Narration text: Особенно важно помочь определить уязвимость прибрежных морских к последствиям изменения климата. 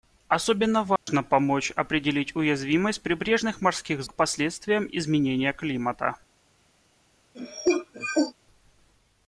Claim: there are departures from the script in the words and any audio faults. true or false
true